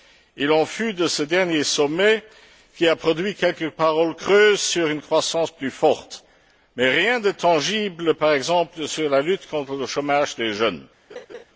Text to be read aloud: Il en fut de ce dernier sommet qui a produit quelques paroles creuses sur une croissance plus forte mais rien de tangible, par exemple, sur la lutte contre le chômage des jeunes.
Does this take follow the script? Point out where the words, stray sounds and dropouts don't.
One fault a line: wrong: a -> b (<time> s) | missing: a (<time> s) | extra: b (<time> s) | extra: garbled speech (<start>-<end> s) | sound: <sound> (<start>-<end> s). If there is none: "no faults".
sound: laugh (11.1-11.4 s)